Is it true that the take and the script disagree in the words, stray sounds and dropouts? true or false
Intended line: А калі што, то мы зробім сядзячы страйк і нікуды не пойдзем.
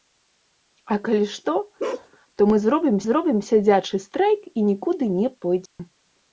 true